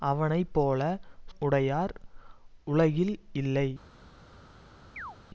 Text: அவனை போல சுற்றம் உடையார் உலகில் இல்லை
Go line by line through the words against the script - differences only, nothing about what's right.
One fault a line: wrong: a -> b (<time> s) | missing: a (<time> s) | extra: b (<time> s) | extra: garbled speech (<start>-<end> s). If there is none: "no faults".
missing: சுற்றம் (0.8 s)